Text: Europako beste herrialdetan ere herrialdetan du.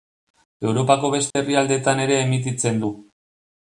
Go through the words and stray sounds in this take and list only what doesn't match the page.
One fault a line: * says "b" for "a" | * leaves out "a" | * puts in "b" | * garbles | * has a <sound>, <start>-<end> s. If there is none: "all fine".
* has a dropout, 1.3-1.4 s
* says "emititzen" for "herrialdetan"